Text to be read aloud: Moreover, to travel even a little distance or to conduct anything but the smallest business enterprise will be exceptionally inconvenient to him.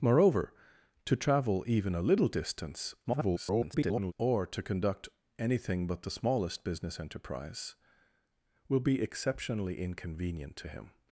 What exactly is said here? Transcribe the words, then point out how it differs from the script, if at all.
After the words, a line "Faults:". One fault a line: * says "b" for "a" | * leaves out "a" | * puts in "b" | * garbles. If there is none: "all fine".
Moreover, to travel even a little distance [garbled] or to conduct anything but the smallest business enterprise will be exceptionally inconvenient to him.
Faults:
* garbles